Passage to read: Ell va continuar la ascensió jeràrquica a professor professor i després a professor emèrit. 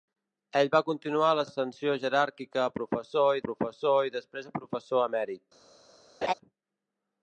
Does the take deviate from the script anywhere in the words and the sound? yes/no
yes